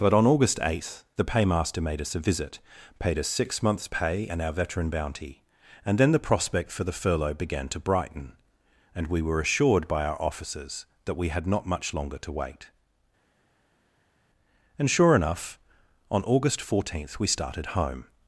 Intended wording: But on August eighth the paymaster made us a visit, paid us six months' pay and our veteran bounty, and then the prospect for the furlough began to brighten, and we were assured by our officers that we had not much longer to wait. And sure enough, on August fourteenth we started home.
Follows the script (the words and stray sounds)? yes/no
yes